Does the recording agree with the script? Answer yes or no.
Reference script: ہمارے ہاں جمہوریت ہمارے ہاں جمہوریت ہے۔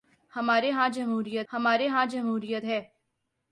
yes